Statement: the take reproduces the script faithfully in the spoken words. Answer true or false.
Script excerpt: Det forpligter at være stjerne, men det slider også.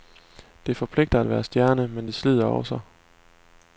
true